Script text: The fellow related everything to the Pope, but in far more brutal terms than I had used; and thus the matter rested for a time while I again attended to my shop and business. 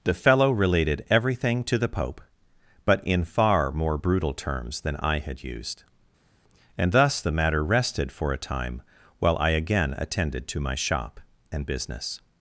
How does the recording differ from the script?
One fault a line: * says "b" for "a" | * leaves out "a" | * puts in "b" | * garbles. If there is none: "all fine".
all fine